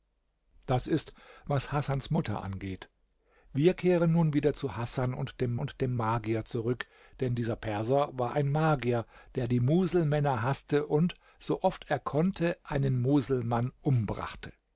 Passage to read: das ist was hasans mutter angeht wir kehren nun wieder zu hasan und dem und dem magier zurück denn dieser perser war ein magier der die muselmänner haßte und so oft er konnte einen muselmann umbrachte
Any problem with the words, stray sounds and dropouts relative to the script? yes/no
no